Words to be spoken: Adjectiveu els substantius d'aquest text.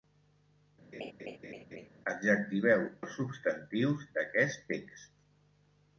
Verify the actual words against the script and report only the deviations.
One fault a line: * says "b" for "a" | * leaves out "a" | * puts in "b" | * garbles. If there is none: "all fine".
all fine